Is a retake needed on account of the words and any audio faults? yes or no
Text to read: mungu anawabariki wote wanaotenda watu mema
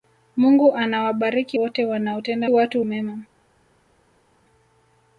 no